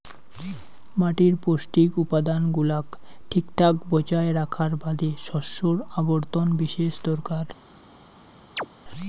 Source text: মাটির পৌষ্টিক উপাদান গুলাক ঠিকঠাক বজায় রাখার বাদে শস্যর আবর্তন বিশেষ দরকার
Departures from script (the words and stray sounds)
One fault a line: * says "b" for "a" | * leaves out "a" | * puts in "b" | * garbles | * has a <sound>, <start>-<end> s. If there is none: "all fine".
* has a chirp, 8.6-8.7 s